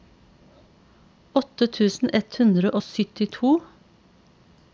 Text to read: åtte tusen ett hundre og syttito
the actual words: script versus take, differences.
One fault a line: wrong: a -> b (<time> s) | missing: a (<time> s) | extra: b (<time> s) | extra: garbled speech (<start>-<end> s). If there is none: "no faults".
no faults